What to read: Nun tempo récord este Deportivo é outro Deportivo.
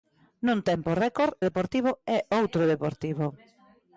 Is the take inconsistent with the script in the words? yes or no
yes